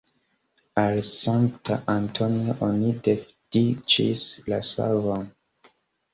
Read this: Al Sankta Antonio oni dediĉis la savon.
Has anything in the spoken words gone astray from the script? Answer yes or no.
no